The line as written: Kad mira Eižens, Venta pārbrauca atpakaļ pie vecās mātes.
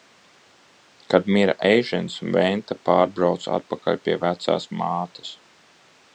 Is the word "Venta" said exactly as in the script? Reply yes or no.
yes